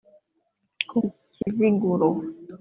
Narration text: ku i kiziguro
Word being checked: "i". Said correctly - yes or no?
yes